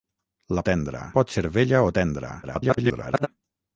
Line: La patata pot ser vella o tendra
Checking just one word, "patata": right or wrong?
wrong